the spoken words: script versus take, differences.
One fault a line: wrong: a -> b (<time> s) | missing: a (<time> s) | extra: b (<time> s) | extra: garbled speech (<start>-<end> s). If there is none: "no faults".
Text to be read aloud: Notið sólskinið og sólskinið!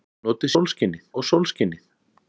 no faults